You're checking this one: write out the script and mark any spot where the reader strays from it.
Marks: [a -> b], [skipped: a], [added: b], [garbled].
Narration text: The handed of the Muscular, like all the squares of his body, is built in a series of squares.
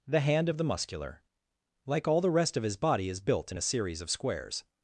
The [handed -> hand] of the Muscular, like all the [squares -> rest] of his body, is built in a series of squares.